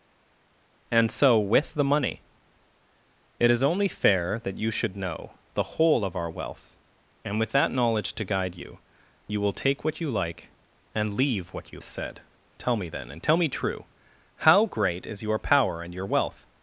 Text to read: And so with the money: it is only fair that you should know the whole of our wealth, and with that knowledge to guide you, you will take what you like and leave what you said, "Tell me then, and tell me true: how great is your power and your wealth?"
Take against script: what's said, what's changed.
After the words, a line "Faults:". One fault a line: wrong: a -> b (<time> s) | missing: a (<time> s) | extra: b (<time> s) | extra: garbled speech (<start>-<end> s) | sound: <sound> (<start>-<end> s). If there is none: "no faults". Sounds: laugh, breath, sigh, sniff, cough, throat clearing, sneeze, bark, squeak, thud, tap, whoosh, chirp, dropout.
And so with the money: it is only fair that you should know the whole of our wealth, and with that knowledge to guide you, you will take what you like and leave what you said, "Tell me then, and tell me true: how great is your power and your wealth?"
Faults:
no faults